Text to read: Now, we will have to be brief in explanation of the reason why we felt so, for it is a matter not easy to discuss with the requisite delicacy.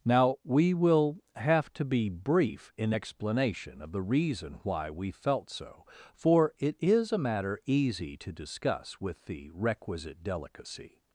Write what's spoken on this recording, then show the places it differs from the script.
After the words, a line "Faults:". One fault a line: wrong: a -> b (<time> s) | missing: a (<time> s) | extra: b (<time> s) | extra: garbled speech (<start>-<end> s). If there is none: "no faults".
Now, we will have to be brief in explanation of the reason why we felt so, for it is a matter easy to discuss with the requisite delicacy.
Faults:
missing: not (7.6 s)